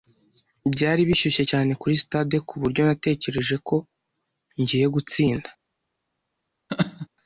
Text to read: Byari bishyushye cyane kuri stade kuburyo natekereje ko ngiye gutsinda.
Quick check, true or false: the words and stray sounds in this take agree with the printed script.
false